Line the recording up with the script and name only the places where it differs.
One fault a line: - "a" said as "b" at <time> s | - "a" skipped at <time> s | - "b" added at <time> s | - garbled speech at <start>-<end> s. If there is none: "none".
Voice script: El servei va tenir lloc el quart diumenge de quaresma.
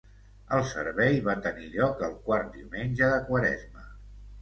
none